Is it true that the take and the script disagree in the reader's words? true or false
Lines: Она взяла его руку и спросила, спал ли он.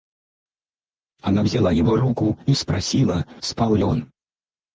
false